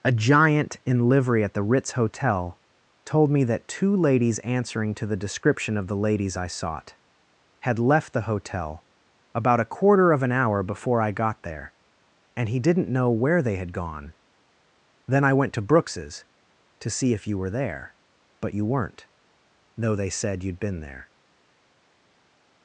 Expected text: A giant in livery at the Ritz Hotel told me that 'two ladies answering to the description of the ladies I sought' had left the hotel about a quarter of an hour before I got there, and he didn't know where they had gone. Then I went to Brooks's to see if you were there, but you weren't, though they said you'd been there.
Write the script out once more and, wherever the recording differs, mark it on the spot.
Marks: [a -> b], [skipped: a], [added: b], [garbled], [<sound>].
A giant in livery at the Ritz Hotel told me that 'two ladies answering to the description of the ladies I sought' had left the hotel about a quarter of an hour before I got there, and he didn't know where they had gone. Then I went to Brooks's to see if you were there, but you weren't, though they said you'd been there.